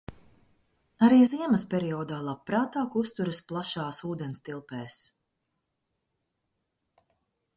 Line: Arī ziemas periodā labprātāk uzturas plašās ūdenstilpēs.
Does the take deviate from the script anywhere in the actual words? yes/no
no